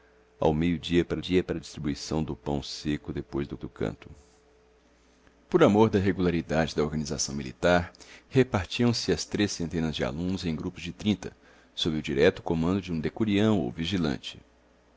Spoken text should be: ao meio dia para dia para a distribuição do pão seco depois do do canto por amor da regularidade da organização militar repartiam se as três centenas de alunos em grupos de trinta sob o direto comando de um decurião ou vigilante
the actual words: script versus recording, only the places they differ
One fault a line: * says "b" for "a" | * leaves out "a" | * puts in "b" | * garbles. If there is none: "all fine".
all fine